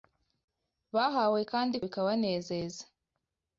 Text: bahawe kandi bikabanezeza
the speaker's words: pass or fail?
pass